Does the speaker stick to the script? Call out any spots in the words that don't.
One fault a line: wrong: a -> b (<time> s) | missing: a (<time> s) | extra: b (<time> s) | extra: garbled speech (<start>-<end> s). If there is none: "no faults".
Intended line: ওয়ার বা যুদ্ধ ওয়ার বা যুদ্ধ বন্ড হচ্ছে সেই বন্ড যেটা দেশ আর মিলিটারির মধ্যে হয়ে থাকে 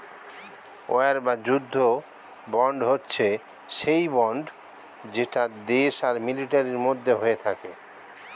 missing: ওয়ার বা যুদ্ধ (1.8 s)